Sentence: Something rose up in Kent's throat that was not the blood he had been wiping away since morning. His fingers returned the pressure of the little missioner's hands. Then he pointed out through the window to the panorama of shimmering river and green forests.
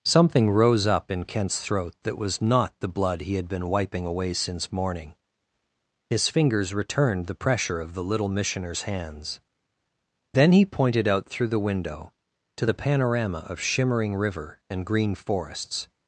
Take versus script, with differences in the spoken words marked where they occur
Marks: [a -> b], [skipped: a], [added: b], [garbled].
Something rose up in Kent's throat that was not the blood he had been wiping away since morning. His fingers returned the pressure of the little missioner's hands. Then he pointed out through the window to the panorama of shimmering river and green forests.